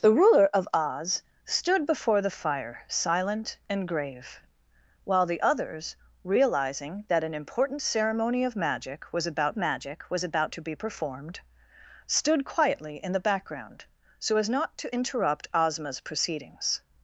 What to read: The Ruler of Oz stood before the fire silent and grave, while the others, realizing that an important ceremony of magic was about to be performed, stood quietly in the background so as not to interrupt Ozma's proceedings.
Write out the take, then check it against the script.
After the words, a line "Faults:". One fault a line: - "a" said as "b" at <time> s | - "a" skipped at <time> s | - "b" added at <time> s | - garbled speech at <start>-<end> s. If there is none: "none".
The Ruler of Oz stood before the fire silent and grave, while the others, realizing that an important ceremony of magic was about magic was about to be performed, stood quietly in the background so as not to interrupt Ozma's proceedings.
Faults:
- "magic was about" added at 9.6 s